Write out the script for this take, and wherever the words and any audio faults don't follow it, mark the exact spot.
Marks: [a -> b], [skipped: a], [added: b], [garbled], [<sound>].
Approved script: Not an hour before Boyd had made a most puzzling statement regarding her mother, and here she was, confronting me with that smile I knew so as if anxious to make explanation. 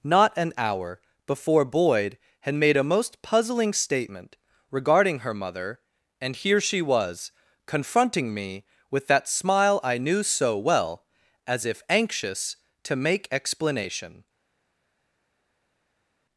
Not an hour before Boyd had made a most puzzling statement regarding her mother, and here she was, confronting me with that smile I knew so [added: well] as if anxious to make explanation.